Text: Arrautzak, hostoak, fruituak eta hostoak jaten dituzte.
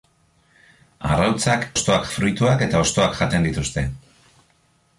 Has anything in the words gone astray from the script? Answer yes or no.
no